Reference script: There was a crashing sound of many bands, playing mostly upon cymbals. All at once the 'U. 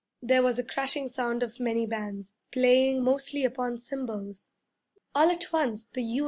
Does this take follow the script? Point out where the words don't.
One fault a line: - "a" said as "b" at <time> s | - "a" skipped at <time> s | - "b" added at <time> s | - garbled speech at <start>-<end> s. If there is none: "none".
none